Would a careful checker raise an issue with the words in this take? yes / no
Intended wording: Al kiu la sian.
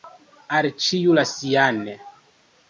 yes